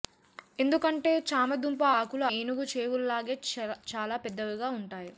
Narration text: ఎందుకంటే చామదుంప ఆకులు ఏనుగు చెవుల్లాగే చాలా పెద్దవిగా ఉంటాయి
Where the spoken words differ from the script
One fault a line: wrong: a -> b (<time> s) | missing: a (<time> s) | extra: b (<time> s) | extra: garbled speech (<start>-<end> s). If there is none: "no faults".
no faults